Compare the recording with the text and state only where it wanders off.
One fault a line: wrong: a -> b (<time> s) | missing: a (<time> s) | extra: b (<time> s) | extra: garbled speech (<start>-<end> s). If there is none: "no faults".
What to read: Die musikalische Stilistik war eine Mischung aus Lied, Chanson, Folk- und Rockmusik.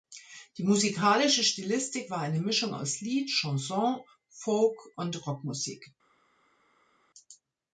no faults